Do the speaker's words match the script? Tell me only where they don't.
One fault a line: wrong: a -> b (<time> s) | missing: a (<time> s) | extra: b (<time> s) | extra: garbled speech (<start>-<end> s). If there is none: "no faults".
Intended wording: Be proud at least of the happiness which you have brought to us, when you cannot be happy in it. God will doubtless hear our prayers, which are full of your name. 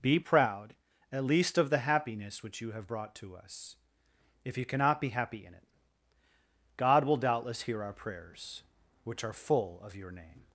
wrong: when -> if (4.4 s)